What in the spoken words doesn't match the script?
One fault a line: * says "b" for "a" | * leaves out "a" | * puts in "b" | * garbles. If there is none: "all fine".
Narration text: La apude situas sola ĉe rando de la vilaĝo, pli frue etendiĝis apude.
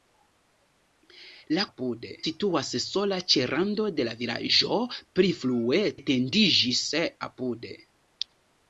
all fine